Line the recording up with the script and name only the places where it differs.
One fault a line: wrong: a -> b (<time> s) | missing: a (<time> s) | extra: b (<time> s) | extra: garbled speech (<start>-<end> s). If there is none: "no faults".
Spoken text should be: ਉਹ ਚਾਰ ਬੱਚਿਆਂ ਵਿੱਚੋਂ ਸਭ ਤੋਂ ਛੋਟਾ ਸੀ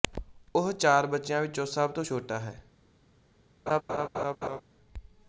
wrong: ਸੀ -> ਹੈ (2.4 s)